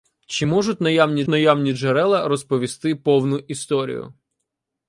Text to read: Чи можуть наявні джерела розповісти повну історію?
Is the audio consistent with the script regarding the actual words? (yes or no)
no